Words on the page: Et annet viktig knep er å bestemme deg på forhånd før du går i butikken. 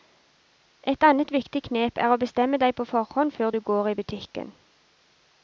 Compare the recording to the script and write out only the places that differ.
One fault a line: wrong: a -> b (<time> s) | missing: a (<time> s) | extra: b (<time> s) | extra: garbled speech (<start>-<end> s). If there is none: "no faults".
no faults